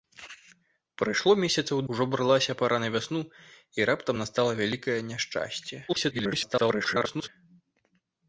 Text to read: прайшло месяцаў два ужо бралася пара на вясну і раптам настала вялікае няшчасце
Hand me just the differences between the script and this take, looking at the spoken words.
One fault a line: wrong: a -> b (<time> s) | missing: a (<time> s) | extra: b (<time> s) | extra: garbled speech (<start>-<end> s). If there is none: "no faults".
missing: два (1.8 s)
extra: garbled speech (5.9-7.3 s)